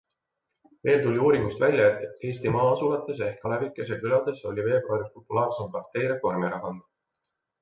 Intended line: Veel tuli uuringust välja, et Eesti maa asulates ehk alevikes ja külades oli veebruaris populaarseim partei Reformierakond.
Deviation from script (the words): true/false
false